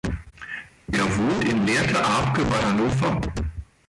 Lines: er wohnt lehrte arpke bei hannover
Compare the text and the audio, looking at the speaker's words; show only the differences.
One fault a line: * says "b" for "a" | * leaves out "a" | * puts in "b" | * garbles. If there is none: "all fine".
* puts in "in"